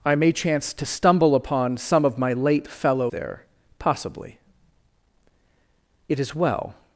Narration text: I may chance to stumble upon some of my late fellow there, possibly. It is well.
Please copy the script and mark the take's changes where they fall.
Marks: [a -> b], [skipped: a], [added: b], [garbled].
I may chance to stumble upon some of my late fellow there, possibly. It is well.